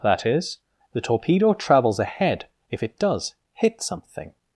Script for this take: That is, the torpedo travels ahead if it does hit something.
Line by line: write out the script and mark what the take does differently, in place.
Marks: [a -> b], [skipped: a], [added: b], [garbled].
That is, the torpedo travels ahead if it does hit something.